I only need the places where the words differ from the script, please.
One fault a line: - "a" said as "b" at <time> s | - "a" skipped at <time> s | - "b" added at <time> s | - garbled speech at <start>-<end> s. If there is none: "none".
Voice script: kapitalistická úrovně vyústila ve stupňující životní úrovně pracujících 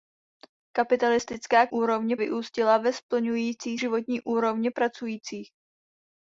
none